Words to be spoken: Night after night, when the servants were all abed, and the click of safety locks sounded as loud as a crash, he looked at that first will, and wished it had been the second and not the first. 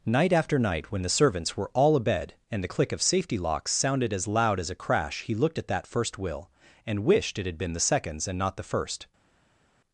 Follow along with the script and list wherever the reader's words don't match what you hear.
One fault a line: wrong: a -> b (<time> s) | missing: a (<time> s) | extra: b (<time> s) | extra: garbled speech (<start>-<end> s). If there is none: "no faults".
wrong: second -> seconds (7.8 s)